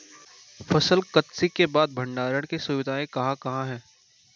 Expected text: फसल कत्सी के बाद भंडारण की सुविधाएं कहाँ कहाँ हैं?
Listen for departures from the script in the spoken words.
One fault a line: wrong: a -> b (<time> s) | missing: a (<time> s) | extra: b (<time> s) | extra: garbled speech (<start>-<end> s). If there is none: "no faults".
no faults